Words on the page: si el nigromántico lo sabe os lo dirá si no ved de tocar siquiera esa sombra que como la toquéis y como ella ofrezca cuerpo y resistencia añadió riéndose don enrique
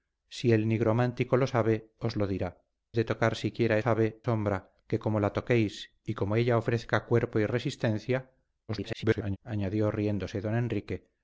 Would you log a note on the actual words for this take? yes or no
yes